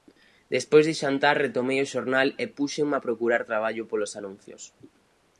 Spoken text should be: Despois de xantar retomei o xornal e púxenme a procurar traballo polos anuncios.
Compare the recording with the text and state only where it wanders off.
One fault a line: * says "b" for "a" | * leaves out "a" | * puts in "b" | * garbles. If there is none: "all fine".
all fine